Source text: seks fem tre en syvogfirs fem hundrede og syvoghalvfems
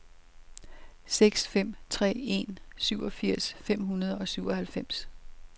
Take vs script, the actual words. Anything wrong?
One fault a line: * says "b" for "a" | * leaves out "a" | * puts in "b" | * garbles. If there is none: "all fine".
all fine